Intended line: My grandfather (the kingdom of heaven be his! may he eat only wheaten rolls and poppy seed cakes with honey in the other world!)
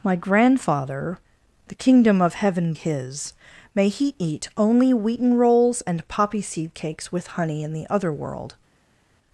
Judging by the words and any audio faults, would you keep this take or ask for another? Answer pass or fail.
fail